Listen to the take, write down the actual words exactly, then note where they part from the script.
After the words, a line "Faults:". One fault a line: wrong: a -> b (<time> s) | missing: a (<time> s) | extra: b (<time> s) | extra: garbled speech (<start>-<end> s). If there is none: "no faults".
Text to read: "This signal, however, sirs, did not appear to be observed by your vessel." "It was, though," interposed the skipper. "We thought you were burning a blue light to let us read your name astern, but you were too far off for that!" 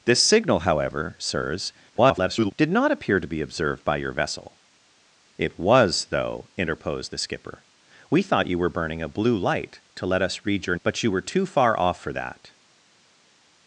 "This signal, however, sirs, [garbled] did not appear to be observed by your vessel." "It was, though," interposed the skipper. "We thought you were burning a blue light to let us read your but you were too far off for that!"
Faults:
extra: garbled speech (1.9-2.5 s)
missing: name astern (10.8 s)